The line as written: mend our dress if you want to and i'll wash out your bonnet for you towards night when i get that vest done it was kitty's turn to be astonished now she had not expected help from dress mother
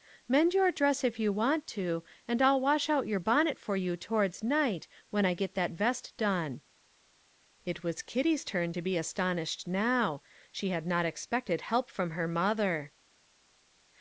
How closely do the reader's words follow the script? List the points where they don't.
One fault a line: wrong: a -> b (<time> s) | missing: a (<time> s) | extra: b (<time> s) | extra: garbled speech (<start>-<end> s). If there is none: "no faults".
wrong: our -> your (0.6 s)
wrong: dress -> her (12.1 s)